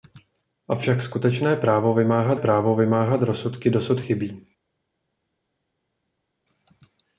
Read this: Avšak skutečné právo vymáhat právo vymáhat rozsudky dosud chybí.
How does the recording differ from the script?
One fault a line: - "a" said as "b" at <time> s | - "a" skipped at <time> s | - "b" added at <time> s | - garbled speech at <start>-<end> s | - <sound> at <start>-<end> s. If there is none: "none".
none